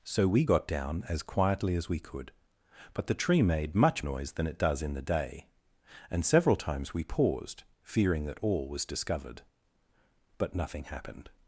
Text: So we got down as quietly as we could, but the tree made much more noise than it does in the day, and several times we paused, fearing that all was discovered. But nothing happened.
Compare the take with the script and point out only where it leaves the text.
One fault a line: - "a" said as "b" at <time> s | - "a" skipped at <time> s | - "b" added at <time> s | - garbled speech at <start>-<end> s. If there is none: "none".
- "more" skipped at 4.0 s